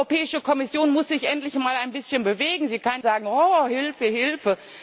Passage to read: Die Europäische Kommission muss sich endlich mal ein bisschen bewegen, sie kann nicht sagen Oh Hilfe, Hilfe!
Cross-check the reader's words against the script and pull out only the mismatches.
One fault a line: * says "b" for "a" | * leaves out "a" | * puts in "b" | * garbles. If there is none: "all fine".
* leaves out "nicht"